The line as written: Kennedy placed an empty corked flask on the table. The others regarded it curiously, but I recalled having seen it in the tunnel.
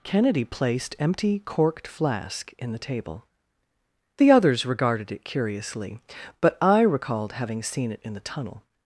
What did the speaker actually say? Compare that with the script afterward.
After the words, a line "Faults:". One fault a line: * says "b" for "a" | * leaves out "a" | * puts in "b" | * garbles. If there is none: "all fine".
Kennedy placed empty corked flask in the table. The others regarded it curiously, but I recalled having seen it in the tunnel.
Faults:
* leaves out "an"
* says "in" for "on"